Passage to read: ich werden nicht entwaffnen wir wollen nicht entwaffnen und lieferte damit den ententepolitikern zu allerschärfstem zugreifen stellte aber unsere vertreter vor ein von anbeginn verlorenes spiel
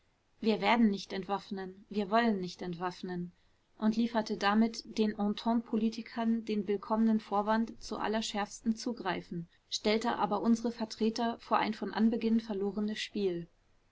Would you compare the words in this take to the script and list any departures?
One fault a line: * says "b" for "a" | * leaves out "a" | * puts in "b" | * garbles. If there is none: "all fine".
* says "wir" for "ich"
* puts in "den willkommenen vorwand"